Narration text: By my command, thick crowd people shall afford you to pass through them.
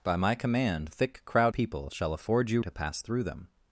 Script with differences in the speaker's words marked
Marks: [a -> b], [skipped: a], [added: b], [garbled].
By my command, thick crowd people shall afford you to pass through them.